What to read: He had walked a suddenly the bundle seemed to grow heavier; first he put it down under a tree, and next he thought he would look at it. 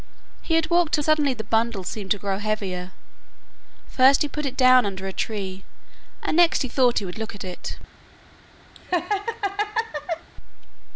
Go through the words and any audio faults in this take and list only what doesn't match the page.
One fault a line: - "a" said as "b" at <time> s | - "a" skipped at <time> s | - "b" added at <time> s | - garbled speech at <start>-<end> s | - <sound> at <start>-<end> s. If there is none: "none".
- laugh at 8.8-10.3 s